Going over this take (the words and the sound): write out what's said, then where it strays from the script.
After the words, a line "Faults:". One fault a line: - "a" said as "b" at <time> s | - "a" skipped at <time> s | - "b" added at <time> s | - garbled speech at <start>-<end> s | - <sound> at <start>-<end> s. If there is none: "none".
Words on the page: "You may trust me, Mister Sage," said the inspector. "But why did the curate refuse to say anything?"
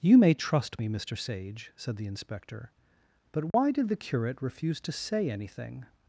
"You may trust me, Mister Sage," said the inspector. "But why did the curate refuse to say anything?"
Faults:
- dropout at 3.5-3.5 s